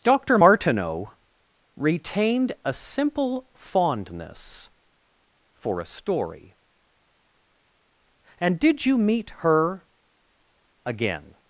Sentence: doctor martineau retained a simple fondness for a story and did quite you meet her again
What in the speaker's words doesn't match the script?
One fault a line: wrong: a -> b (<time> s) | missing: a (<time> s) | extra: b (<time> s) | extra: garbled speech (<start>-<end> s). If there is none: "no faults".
missing: quite (8.9 s)